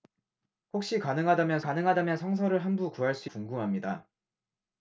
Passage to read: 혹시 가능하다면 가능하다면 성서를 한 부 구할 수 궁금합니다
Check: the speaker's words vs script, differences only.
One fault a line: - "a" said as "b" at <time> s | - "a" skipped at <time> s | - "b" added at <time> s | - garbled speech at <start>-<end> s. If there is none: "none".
none